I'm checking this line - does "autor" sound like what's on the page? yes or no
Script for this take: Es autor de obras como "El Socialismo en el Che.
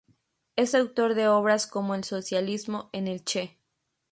yes